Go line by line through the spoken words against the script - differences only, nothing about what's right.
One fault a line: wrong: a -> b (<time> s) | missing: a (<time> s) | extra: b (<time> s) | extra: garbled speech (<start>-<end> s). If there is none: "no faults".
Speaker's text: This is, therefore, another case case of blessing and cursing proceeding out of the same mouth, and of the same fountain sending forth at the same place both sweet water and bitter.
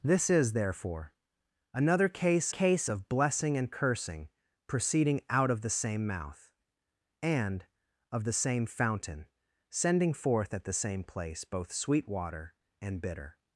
no faults